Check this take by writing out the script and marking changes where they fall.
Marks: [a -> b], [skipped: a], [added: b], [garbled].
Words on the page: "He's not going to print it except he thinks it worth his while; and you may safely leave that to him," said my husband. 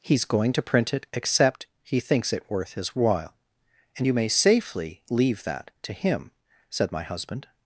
"He's [skipped: not] going to print it except he thinks it worth his while; and you may safely leave that to him," said my husband.